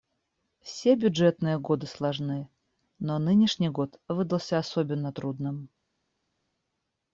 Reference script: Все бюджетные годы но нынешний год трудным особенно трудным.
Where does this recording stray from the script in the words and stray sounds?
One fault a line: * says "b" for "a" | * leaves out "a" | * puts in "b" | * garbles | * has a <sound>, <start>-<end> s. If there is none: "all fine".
* puts in "сложны"
* says "выдался" for "трудным"